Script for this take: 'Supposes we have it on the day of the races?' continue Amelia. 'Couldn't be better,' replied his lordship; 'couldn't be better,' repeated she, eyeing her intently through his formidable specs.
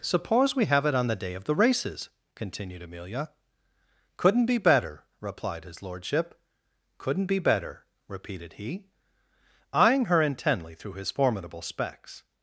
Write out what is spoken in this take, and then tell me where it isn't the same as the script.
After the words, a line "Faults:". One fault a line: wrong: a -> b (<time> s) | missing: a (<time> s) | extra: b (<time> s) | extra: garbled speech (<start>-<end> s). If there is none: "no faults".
'Suppose we have it on the day of the races?' continued Amelia. 'Couldn't be better,' replied his lordship; 'couldn't be better,' repeated he, eyeing her intently through his formidable specs.
Faults:
wrong: Supposes -> Suppose (0.0 s)
wrong: continue -> continued (2.3 s)
wrong: she -> he (8.5 s)